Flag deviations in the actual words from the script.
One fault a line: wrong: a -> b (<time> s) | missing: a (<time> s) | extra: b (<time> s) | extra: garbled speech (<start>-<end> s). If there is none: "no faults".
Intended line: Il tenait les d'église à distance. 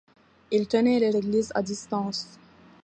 no faults